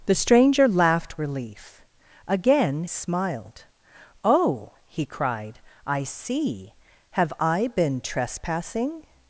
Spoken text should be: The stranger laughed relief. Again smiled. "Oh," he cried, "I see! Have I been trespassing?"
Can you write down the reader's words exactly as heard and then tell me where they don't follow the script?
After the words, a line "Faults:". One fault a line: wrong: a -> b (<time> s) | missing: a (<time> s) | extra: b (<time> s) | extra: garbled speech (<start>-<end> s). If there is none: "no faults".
The stranger laughed relief. Again smiled. "Oh," he cried, "I see! Have I been trespassing?"
Faults:
no faults